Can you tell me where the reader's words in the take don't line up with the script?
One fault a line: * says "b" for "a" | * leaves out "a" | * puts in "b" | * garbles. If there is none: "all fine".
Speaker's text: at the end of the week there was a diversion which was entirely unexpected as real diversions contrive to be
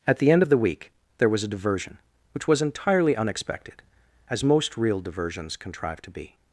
* puts in "most"